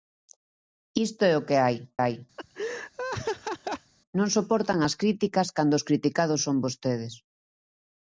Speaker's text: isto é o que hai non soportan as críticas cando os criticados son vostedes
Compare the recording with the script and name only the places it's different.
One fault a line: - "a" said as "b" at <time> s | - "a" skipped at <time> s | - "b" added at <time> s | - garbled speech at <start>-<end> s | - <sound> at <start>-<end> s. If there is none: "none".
- "hai" added at 2.0 s
- laugh at 2.4-3.9 s